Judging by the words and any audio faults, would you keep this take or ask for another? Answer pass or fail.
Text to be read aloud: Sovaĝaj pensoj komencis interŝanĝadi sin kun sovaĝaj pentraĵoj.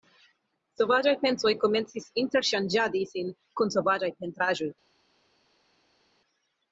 pass